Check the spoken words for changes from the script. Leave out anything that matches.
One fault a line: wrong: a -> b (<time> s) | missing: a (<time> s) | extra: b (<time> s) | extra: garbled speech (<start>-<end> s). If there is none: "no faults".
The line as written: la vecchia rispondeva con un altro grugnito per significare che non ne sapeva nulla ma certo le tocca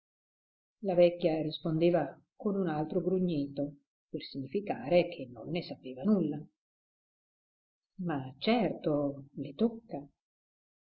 no faults